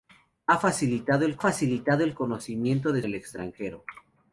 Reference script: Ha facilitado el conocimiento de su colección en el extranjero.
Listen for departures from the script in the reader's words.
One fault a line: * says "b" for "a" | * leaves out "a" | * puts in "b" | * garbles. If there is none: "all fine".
* puts in "facilitado el"
* leaves out "su colección en"